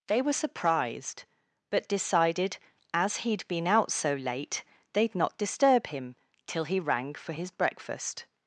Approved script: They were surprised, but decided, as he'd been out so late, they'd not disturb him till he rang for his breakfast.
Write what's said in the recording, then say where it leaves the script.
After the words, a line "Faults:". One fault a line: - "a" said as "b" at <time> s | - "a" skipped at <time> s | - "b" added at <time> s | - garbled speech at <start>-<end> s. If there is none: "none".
They were surprised, but decided, as he'd been out so late, they'd not disturb him till he rang for his breakfast.
Faults:
none